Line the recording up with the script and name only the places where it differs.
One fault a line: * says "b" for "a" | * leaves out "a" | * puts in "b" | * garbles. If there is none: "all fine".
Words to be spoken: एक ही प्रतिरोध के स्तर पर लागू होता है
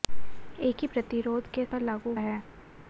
* leaves out "स्तर"
* leaves out "होता"